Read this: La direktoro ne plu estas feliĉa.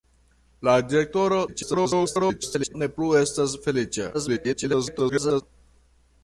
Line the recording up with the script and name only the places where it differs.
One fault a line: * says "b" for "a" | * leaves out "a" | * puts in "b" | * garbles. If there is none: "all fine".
* garbles
* garbles